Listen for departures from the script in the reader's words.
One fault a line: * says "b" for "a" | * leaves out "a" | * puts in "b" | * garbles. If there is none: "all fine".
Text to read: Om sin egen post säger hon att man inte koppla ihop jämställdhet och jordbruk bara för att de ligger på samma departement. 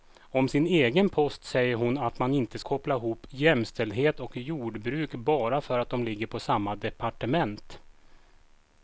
all fine